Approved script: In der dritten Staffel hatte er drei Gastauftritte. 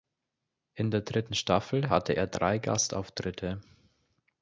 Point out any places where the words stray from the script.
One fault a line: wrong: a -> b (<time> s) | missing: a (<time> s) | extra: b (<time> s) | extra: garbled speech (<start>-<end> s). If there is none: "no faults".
no faults